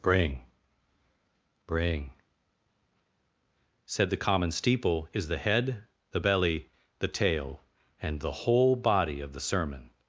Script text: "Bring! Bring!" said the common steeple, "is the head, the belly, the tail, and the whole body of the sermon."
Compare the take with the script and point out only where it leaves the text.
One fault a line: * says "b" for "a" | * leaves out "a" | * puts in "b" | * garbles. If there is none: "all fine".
all fine